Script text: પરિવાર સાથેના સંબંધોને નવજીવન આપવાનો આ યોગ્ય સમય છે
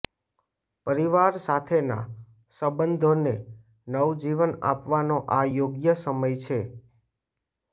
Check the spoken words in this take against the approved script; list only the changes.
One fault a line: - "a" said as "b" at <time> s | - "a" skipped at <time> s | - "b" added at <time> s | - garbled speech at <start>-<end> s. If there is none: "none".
none